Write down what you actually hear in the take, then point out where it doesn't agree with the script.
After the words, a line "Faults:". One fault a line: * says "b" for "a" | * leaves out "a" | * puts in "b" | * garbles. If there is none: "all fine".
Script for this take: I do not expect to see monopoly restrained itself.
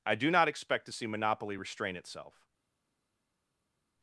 I do not expect to see monopoly restrain itself.
Faults:
* says "restrain" for "restrained"